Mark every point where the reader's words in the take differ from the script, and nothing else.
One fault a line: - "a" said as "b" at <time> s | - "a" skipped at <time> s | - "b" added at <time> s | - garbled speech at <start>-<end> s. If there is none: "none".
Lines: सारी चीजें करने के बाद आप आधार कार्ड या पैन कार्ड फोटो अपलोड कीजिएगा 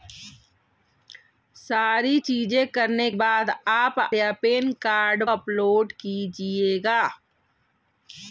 - "के" skipped at 3.1 s
- "आधार कार्ड" skipped at 4.0 s
- "फोटो" skipped at 5.2 s